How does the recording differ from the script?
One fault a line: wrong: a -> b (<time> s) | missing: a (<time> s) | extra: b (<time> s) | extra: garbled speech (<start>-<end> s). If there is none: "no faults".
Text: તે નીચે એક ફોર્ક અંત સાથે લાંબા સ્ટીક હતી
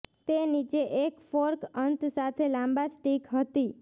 no faults